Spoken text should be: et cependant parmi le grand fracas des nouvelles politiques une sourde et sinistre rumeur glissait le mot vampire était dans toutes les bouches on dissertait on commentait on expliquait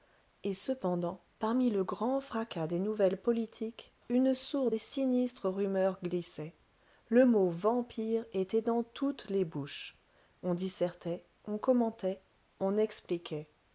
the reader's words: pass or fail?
pass